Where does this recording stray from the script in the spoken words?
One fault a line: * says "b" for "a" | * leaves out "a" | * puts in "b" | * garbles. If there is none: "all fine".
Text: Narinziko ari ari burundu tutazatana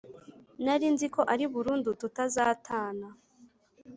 * leaves out "ari"